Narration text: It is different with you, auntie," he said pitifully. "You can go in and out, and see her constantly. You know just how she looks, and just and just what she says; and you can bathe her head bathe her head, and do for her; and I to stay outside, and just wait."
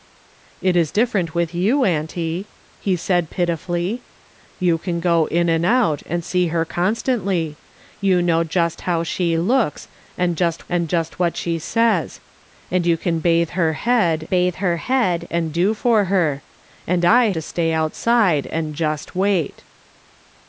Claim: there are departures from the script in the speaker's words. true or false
false